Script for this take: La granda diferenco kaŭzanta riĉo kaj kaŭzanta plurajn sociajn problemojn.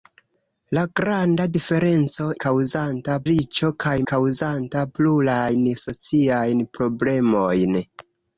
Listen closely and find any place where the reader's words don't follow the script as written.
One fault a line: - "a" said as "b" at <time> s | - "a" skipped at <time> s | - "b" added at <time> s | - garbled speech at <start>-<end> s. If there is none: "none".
none